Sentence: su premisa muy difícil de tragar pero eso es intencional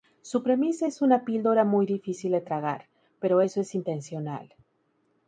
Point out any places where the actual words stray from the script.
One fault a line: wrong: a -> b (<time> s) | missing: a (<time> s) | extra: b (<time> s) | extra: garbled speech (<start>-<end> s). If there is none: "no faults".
extra: es una píldora (0.9 s)